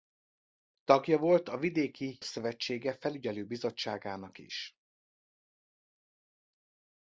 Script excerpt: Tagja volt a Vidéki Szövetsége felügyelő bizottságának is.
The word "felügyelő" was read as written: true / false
true